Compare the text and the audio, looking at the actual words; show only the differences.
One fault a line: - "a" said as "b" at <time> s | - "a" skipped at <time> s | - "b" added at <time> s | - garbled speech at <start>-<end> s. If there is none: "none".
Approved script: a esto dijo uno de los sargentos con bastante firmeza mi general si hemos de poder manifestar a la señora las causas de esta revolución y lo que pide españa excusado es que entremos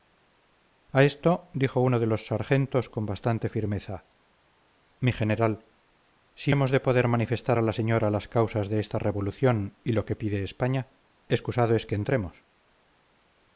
none